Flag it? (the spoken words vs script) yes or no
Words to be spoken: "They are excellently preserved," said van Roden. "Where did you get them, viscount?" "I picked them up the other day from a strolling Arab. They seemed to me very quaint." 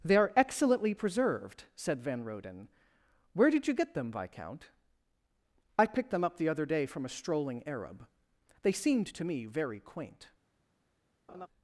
no